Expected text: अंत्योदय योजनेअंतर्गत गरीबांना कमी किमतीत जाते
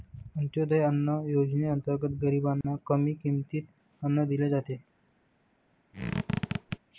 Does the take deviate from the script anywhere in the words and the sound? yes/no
yes